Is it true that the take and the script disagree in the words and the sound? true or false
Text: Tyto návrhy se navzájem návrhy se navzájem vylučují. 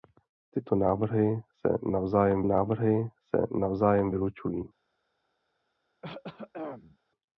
true